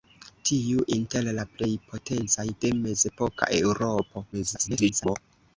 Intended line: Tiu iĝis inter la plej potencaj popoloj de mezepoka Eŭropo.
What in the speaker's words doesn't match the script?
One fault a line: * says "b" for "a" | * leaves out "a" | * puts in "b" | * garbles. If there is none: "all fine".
* leaves out "iĝis"
* leaves out "popoloj"
* garbles